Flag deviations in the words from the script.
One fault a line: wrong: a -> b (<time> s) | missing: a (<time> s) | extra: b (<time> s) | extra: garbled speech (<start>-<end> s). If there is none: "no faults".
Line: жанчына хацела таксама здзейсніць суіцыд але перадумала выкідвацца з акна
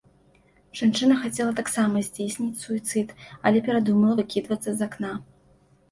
no faults